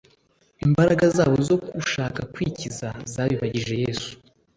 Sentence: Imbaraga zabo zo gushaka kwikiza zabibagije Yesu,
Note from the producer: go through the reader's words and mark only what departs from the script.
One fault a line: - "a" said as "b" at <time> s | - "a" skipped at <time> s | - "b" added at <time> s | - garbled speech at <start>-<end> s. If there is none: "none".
none